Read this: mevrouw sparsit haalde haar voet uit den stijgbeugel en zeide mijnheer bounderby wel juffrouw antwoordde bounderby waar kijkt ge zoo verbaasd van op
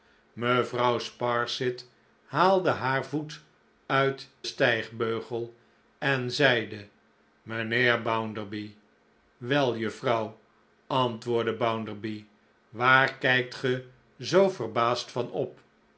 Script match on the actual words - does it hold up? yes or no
no